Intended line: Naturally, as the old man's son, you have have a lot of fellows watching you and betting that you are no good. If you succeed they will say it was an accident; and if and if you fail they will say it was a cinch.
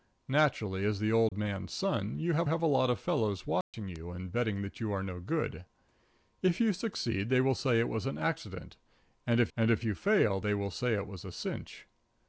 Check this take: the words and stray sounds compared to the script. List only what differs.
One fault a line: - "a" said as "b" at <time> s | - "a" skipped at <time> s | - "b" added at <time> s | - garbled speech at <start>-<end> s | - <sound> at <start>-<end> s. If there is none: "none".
- dropout at 1.3-1.3 s
- dropout at 3.6-3.7 s